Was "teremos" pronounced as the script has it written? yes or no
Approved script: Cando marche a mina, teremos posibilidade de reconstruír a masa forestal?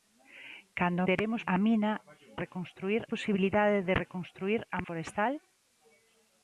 no